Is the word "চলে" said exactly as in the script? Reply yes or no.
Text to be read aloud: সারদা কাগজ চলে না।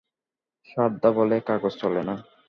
yes